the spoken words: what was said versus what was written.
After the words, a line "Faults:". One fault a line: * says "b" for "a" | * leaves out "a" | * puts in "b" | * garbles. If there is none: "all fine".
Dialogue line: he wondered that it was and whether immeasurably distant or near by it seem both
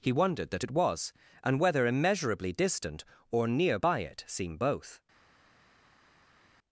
he wondered that it was and whether immeasurably distant or near by it seem both
Faults:
all fine